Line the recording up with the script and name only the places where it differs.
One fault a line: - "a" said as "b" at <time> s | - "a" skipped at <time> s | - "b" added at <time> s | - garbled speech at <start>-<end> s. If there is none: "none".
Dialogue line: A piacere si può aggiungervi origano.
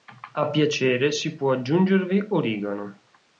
none